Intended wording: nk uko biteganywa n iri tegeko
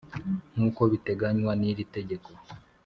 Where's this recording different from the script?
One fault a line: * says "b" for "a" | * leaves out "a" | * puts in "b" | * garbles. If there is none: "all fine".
all fine